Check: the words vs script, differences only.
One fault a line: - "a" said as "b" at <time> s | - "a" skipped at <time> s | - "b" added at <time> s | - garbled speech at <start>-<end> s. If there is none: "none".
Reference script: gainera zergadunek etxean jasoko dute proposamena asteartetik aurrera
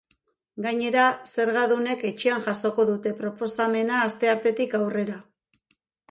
none